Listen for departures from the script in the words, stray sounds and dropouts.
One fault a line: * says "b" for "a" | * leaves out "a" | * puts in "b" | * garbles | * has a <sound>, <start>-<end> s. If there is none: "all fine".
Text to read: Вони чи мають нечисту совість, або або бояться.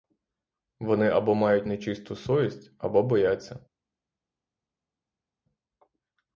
* says "або" for "чи"
* leaves out "або"